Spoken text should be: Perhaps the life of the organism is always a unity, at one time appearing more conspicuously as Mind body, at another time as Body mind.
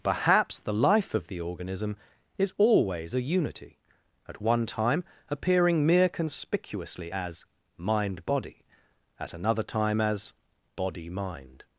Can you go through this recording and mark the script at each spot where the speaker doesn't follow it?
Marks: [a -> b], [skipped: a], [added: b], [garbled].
Perhaps the life of the organism is always a unity, at one time appearing [more -> mere] conspicuously as Mind body, at another time as Body mind.